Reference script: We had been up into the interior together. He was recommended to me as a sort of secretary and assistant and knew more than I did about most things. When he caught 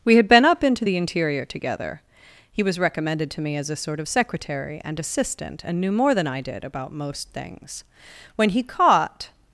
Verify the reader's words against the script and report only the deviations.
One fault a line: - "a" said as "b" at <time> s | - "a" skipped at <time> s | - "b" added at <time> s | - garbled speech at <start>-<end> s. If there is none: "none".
none